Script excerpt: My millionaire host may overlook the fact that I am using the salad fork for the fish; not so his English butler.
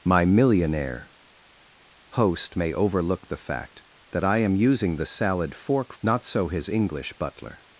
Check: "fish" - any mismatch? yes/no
yes